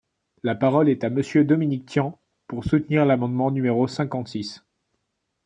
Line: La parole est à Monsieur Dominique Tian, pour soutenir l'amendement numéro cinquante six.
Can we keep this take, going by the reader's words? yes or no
yes